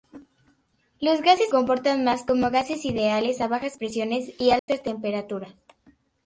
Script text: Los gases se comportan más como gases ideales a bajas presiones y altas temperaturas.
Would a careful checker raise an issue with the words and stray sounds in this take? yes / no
yes